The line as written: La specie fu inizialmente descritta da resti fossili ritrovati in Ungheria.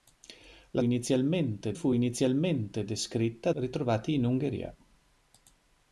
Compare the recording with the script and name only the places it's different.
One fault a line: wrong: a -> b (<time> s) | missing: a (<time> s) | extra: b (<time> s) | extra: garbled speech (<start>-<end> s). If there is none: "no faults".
wrong: specie -> inizialmente (0.8 s)
missing: da resti fossili (3.5 s)